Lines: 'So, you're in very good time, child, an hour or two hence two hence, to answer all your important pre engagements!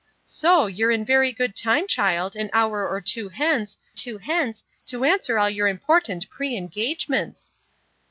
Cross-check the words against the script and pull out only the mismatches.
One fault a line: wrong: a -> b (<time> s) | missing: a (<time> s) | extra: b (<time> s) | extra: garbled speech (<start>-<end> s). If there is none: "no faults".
no faults